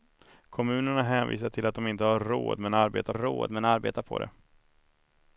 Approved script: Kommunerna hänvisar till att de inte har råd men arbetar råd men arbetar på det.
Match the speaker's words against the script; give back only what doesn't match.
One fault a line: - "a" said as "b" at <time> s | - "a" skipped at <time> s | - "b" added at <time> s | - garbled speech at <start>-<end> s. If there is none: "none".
none